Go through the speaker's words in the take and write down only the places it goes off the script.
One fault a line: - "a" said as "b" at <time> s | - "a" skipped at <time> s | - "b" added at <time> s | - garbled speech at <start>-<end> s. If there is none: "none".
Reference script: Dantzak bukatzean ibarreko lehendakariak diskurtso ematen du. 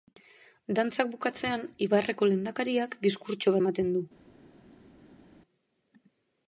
none